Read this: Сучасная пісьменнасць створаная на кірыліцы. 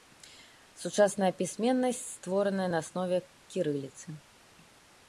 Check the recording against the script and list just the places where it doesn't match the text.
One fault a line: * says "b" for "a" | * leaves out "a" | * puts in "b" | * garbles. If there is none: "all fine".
* puts in "аснове"